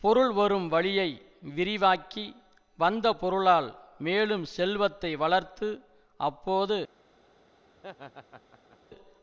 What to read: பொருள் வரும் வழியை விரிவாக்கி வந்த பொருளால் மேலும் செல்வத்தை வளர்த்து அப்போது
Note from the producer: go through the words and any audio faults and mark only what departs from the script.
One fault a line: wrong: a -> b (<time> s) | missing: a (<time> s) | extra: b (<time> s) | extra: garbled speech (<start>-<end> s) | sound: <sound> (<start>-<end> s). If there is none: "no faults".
sound: laugh (7.8-8.8 s)